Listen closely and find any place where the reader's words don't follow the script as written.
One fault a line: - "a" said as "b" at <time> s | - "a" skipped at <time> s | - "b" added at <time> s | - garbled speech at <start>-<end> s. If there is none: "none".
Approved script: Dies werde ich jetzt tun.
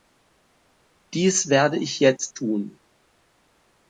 none